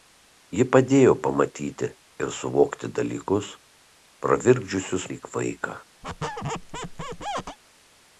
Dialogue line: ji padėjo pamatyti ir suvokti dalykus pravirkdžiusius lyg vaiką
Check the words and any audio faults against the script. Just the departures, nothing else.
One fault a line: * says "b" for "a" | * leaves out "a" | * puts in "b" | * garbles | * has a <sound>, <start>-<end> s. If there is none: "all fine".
* has a squeak, 6.0-7.6 s